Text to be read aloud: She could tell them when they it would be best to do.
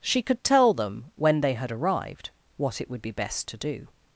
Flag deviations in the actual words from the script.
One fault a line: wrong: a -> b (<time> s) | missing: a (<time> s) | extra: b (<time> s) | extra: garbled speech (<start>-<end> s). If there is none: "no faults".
extra: had arrived what (1.5 s)